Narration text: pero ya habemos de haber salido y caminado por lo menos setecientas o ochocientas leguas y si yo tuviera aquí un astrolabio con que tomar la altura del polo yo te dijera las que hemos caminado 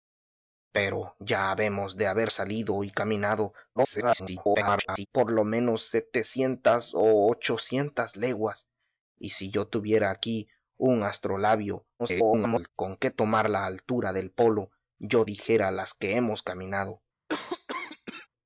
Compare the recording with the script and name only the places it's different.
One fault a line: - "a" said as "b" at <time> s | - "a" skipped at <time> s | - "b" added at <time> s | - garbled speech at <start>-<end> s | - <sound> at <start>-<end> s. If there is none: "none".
- garbled speech at 3.7-5.1 s
- garbled speech at 12.0-12.7 s
- "te" skipped at 15.3 s
- cough at 17.3-18.3 s